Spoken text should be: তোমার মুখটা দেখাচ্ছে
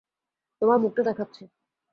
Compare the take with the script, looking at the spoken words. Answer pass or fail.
pass